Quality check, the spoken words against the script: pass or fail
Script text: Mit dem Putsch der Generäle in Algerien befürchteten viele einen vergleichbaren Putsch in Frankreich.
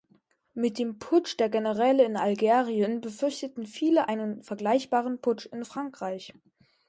pass